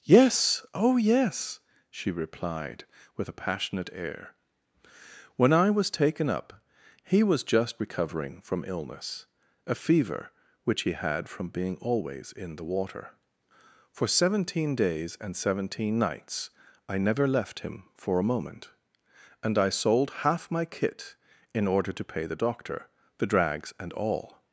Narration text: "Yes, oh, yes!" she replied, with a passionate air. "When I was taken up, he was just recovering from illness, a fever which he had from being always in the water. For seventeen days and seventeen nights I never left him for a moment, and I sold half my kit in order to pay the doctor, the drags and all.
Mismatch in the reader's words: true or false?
false